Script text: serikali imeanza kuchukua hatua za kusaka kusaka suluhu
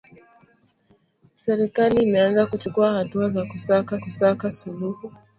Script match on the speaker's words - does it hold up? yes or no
yes